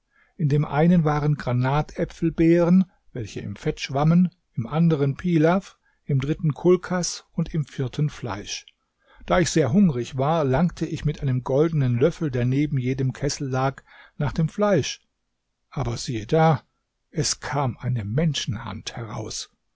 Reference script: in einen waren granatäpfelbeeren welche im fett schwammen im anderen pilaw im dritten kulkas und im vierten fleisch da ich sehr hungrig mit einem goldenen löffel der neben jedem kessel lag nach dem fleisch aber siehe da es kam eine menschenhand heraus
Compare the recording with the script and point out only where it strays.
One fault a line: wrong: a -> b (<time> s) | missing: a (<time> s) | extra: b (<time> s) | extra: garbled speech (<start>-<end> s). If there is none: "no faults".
extra: dem (0.5 s)
extra: war langte ich (10.2 s)